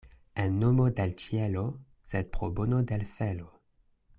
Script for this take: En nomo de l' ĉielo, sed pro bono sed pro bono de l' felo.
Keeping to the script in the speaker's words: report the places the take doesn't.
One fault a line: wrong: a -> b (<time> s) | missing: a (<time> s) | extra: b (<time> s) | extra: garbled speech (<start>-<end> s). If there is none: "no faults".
missing: sed pro bono (2.8 s)